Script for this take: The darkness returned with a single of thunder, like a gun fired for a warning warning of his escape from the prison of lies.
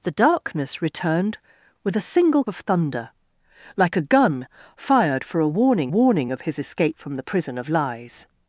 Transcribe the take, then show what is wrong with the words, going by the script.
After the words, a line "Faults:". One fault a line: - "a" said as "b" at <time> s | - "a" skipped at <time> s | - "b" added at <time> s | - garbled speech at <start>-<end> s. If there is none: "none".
The darkness returned with a single of thunder, like a gun fired for a warning warning of his escape from the prison of lies.
Faults:
none